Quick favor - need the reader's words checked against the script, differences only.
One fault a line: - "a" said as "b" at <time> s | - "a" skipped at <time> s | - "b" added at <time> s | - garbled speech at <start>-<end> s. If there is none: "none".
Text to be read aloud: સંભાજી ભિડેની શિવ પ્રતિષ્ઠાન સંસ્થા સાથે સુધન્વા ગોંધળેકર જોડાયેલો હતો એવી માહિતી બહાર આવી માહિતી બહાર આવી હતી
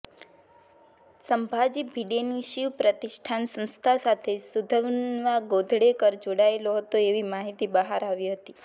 - "માહિતી બહાર આવી" skipped at 8.3 s